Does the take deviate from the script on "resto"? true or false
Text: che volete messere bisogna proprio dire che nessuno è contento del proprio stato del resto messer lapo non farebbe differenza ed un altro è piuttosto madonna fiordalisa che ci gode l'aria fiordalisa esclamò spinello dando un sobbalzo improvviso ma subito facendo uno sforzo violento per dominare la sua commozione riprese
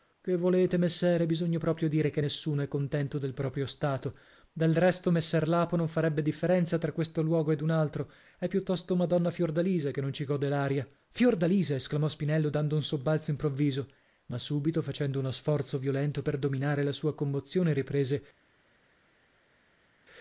false